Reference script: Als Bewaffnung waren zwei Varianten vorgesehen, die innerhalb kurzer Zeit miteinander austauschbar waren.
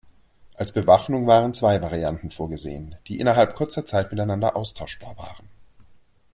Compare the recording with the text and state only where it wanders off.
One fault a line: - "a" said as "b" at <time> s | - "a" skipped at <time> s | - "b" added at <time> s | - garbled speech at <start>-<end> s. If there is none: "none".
none